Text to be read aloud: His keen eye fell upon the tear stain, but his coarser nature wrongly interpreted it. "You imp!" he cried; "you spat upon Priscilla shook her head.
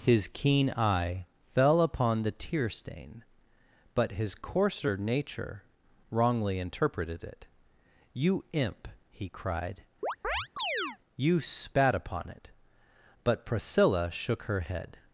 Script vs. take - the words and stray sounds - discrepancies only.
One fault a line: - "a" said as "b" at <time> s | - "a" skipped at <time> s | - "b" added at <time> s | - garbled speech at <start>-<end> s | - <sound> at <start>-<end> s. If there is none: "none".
- chirp at 10.0-11.0 s
- "it But" added at 12.3 s